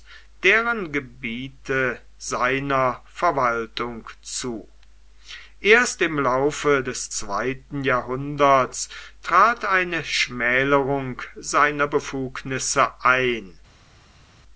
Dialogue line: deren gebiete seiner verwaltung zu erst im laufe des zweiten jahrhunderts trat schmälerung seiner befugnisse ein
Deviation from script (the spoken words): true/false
true